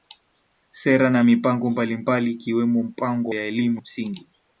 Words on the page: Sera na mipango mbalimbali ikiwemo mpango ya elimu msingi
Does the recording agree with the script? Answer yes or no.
yes